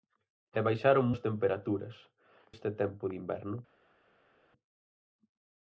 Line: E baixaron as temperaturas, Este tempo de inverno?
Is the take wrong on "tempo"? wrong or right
right